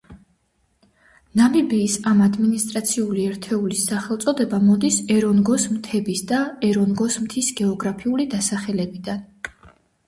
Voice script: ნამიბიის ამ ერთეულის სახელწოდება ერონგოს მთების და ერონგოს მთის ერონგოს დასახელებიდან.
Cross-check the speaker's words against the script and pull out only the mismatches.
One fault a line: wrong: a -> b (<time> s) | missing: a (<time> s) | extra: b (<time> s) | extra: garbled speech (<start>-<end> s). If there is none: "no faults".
extra: ადმინისტრაციული (2.3 s)
extra: მოდის (4.7 s)
wrong: ერონგოს -> გეოგრაფიული (7.6 s)